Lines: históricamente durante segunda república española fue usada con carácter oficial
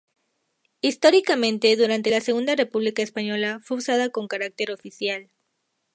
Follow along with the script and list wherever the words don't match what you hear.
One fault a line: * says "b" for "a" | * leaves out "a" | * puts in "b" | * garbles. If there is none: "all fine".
* puts in "la"